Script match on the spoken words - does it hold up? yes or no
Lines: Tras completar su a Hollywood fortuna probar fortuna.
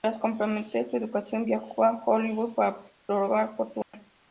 no